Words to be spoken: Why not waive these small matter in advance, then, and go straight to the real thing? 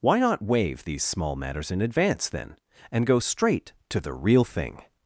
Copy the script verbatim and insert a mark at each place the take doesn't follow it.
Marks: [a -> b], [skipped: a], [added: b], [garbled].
Why not waive these small [matter -> matters] in advance, then, and go straight to the real thing?